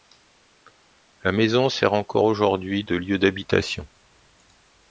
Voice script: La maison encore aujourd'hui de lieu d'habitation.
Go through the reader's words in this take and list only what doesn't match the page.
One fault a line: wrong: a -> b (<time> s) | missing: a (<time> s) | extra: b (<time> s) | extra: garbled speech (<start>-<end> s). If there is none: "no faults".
extra: sert (1.7 s)